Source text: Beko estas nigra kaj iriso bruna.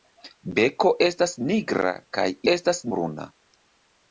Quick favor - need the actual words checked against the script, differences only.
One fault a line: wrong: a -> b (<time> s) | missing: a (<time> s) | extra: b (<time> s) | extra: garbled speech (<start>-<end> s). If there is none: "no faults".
wrong: iriso -> estas (2.5 s)